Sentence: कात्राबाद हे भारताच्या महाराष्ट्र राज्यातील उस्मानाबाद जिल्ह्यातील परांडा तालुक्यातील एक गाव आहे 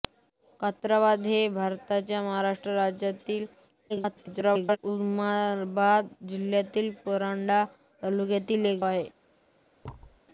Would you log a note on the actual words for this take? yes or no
yes